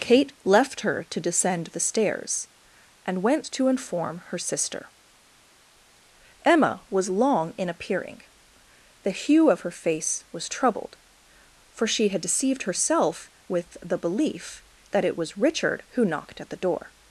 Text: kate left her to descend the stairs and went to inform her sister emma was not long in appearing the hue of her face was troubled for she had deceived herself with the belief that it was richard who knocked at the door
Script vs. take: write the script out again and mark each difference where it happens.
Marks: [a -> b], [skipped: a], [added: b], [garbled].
kate left her to descend the stairs and went to inform her sister emma was [skipped: not] long in appearing the hue of her face was troubled for she had deceived herself with the belief that it was richard who knocked at the door